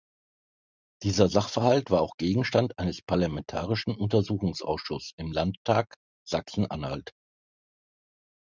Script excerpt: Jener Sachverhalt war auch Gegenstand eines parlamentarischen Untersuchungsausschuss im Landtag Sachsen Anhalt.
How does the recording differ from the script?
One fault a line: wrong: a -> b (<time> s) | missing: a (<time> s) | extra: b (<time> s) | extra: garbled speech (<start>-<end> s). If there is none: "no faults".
wrong: Jener -> Dieser (1.0 s)